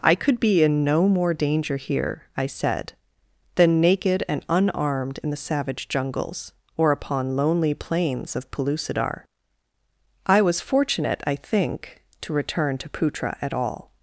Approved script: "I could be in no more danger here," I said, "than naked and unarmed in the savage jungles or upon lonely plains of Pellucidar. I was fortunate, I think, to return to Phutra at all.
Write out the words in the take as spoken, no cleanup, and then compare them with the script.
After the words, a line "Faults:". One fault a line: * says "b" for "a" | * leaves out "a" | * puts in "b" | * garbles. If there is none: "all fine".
"I could be in no more danger here," I said, "than naked and unarmed in the savage jungles or upon lonely plains of Pellucidar. I was fortunate, I think, to return to Phutra at all.
Faults:
all fine